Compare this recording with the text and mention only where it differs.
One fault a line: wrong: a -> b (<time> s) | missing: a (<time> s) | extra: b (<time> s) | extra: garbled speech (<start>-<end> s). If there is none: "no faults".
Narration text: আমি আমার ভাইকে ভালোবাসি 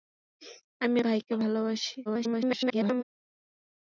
missing: আমার (1.0 s)
extra: garbled speech (2.1-3.0 s)